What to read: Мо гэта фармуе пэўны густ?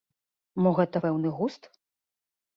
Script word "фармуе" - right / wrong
wrong